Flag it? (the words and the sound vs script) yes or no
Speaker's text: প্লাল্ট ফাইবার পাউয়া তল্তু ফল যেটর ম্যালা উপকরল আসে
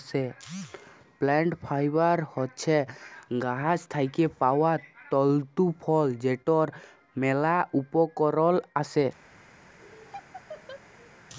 yes